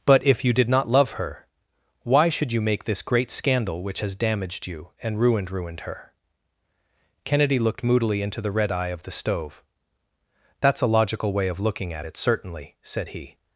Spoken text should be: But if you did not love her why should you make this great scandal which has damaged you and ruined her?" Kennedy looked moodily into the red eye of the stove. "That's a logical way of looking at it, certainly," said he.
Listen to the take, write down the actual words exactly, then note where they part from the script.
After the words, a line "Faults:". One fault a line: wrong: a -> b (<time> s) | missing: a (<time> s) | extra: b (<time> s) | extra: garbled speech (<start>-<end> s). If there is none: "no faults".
But if you did not love her why should you make this great scandal which has damaged you and ruined ruined her?" Kennedy looked moodily into the red eye of the stove. "That's a logical way of looking at it, certainly," said he.
Faults:
extra: ruined (5.5 s)